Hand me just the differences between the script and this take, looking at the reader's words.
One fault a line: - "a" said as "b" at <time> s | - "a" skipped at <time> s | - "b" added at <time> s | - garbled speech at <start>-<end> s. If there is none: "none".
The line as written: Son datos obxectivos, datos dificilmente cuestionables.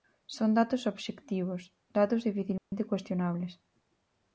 none